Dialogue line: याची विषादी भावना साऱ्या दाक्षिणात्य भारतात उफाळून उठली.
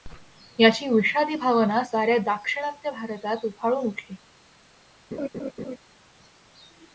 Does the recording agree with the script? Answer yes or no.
yes